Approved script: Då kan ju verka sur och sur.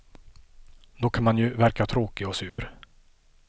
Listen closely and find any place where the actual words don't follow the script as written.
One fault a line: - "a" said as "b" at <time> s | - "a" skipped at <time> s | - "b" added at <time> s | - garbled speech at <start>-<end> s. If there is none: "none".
- "man" added at 1.2 s
- "sur" said as "tråkig" at 1.9 s